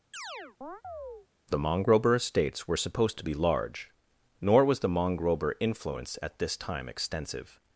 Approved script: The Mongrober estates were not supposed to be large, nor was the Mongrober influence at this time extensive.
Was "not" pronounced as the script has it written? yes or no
no